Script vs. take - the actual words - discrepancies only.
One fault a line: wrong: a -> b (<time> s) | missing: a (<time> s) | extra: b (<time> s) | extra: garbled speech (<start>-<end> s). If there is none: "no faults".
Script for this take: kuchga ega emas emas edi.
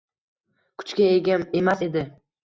missing: emas (1.8 s)